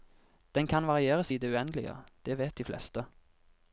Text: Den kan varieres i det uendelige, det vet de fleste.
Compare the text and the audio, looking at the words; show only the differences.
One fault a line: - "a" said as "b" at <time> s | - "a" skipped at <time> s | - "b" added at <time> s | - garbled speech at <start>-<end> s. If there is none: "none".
none